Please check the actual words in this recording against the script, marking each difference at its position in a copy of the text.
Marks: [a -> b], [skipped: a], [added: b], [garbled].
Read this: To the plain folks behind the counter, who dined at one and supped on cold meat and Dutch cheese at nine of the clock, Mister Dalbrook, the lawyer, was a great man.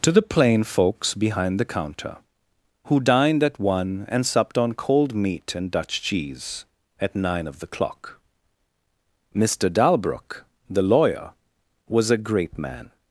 To the plain folks behind the counter, who dined at one and supped on cold meat and Dutch cheese at nine of the clock, Mister Dalbrook, the lawyer, was a great man.